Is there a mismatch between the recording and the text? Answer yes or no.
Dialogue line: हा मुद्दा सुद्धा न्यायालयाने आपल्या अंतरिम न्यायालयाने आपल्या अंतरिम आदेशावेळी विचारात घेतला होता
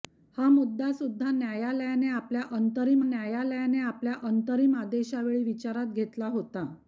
no